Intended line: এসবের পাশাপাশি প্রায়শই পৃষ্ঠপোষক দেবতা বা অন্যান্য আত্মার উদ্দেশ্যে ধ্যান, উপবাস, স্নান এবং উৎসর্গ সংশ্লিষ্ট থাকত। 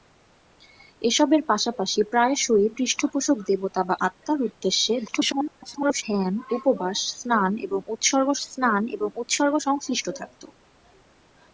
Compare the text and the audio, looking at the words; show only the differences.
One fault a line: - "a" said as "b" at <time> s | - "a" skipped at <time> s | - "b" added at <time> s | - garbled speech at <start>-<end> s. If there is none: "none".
- "অন্যান্য" skipped at 4.0 s
- garbled speech at 5.1-6.0 s
- "স্নান এবং উৎসর্গ" added at 8.5 s